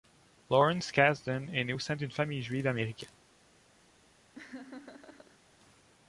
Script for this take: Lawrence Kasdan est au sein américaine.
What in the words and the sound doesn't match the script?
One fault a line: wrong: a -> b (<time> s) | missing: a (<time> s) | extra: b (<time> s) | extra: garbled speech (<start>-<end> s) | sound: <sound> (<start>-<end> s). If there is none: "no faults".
extra: né (1.6 s)
extra: d'une famille juive (2.0 s)
sound: laugh (4.3-5.4 s)